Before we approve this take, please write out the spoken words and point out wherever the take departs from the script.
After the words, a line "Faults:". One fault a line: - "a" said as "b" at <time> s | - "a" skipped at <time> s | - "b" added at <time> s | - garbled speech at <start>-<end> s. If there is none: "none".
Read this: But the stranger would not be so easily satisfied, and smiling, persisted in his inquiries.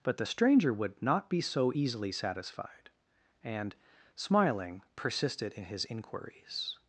But the stranger would not be so easily satisfied, and smiling, persisted in his inquiries.
Faults:
none